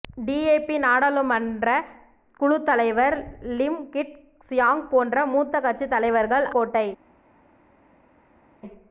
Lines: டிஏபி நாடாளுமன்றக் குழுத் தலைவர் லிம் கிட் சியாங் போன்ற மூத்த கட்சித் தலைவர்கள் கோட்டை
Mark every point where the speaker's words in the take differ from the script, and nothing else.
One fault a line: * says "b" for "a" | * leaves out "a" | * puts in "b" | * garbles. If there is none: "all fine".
all fine